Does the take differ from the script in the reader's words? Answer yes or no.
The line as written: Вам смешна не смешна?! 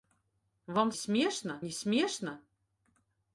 no